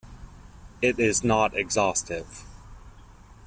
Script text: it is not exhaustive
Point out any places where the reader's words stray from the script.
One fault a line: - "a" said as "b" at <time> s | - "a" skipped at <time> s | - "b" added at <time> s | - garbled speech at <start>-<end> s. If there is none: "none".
none